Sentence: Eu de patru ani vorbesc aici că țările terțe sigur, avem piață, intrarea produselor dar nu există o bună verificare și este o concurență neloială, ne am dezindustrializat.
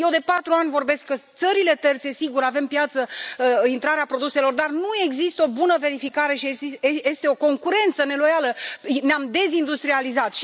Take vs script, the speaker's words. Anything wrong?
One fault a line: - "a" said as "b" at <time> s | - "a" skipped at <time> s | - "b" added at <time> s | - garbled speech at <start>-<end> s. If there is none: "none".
- "aici" skipped at 1.1 s